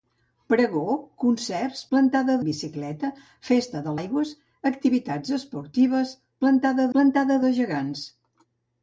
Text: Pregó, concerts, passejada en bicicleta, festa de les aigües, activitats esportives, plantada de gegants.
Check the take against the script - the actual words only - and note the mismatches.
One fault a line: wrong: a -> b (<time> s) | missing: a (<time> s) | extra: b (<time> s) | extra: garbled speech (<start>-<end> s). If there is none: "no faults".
wrong: passejada -> plantada (1.9 s)
missing: les (4.0 s)
extra: plantada (7.0 s)